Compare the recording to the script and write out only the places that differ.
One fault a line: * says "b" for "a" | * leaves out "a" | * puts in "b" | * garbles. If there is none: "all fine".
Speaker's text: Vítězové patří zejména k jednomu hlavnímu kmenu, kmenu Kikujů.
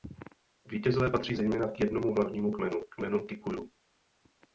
all fine